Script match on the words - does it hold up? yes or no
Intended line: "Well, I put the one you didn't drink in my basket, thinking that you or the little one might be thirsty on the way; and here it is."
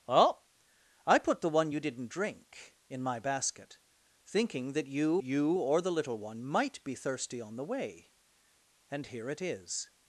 no